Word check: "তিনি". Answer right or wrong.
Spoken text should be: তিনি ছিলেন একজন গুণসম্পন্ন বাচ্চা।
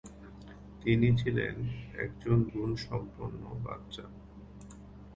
right